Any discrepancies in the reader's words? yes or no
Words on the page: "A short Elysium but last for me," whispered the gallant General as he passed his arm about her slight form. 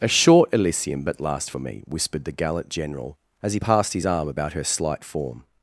no